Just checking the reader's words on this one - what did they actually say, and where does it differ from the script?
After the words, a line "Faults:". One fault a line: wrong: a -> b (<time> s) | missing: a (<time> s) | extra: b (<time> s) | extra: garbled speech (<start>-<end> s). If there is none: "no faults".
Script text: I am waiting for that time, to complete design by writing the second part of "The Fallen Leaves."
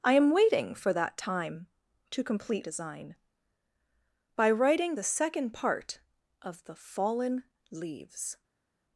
I am waiting for that time, to complete design by writing the second part of "The Fallen Leaves."
Faults:
no faults